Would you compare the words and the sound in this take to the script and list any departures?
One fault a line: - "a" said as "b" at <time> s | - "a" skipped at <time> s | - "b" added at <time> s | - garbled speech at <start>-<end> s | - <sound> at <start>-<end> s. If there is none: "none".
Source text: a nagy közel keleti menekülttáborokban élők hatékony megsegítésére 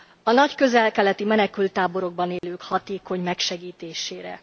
- dropout at 2.4-2.4 s